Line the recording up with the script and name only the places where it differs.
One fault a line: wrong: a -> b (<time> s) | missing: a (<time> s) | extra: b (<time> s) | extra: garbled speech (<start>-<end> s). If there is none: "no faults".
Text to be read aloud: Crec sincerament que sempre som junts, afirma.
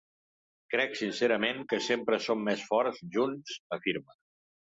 extra: més forts (2.5 s)